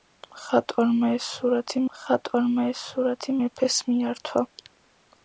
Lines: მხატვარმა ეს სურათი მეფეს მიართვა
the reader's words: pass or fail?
fail